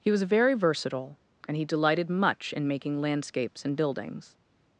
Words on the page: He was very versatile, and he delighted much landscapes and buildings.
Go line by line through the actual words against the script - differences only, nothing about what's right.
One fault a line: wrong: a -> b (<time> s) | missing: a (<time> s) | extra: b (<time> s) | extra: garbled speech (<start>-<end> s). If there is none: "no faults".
extra: in making (2.5 s)